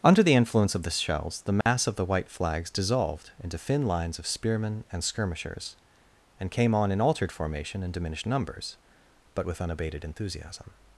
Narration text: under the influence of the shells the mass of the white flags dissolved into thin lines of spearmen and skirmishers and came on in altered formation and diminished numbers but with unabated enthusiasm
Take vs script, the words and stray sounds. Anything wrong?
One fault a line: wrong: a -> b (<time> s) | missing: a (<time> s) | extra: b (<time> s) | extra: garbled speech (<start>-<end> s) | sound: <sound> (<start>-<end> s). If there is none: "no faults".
sound: dropout (1.6-1.7 s)